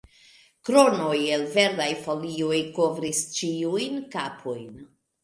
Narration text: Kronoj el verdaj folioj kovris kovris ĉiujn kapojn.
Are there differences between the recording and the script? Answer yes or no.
yes